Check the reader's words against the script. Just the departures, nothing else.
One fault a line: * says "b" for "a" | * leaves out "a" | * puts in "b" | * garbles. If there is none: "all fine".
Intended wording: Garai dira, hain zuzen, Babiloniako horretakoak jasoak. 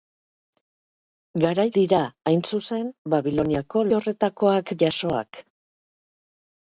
all fine